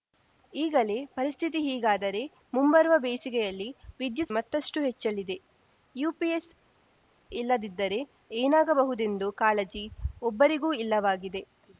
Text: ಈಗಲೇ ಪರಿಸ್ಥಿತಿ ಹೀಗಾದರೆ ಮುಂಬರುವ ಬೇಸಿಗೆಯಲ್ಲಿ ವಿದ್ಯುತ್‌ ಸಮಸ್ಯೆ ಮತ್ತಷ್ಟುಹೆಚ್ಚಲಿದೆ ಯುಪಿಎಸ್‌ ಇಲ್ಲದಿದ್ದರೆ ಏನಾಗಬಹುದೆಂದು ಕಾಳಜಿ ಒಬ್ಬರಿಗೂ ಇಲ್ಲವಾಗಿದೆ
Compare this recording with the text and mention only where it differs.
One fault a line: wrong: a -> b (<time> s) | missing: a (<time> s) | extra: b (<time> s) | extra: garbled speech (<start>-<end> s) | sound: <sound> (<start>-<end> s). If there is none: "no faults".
missing: ಸಮಸ್ಯೆ (4.3 s)